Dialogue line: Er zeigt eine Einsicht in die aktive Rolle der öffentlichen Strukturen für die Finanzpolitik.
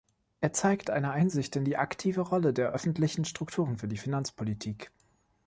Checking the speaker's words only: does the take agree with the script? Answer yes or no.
yes